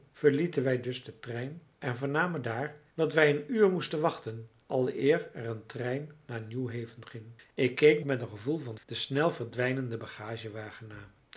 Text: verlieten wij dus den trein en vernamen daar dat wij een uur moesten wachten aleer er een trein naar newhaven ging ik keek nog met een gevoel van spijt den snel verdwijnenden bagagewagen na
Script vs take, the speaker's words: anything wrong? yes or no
yes